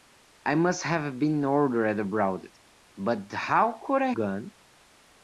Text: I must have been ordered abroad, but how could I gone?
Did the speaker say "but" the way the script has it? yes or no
yes